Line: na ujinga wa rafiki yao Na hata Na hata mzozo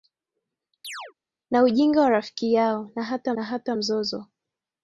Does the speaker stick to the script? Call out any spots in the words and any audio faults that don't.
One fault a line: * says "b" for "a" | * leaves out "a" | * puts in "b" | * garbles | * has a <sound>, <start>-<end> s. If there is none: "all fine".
* has a chirp, 0.8-1.1 s